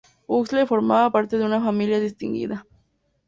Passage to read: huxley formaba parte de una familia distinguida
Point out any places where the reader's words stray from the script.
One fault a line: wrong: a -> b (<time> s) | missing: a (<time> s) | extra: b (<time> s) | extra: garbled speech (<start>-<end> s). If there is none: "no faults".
no faults